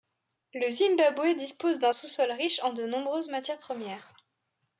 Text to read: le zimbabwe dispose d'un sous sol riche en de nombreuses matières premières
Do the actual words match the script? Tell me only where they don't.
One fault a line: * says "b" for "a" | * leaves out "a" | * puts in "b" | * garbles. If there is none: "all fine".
all fine